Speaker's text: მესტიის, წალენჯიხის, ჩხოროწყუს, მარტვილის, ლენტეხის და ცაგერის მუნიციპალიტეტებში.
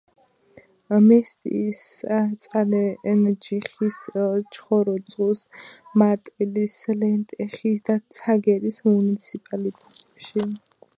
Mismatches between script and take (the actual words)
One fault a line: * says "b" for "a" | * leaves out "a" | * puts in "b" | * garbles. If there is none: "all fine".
all fine